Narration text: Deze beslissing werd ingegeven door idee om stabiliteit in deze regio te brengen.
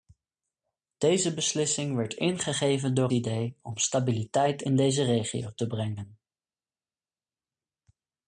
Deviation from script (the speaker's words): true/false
false